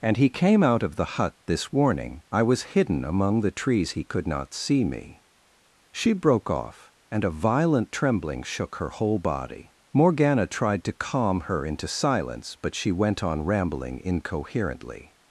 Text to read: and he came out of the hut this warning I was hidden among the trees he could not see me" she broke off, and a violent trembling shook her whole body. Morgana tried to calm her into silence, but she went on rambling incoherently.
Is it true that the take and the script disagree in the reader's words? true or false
false